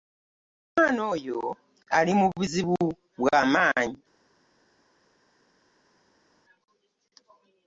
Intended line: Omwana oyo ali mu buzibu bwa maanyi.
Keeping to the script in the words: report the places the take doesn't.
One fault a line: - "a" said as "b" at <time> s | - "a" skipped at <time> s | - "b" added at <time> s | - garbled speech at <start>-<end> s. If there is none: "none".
none